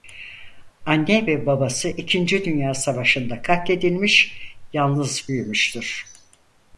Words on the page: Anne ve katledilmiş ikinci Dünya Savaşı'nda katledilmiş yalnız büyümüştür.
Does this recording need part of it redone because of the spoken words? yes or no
yes